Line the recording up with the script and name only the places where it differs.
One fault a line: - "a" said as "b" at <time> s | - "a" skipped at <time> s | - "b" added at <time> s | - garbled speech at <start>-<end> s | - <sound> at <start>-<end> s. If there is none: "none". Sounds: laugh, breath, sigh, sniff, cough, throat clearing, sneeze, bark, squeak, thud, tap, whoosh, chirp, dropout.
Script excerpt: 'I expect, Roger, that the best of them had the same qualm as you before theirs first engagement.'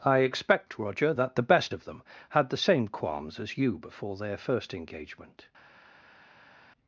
- "qualm" said as "qualms" at 2.9 s
- "theirs" said as "their" at 4.2 s